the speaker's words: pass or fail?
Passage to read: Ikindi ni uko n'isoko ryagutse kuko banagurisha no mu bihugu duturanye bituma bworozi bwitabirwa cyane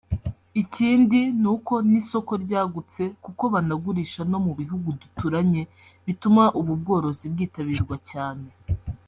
fail